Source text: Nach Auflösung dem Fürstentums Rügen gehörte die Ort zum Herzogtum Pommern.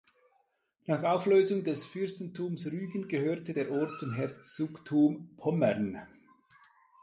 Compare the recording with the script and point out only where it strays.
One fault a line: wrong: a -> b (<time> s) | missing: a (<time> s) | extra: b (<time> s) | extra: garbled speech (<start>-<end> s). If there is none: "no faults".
wrong: dem -> des (1.6 s)
wrong: die -> der (3.5 s)